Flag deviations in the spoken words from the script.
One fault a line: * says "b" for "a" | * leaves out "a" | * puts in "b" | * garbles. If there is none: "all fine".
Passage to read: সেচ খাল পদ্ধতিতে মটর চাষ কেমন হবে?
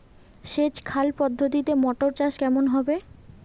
all fine